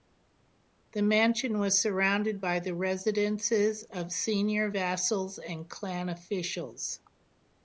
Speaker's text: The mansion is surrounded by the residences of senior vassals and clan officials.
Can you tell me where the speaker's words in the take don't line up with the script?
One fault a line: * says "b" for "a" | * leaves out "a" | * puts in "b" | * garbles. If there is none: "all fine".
* says "was" for "is"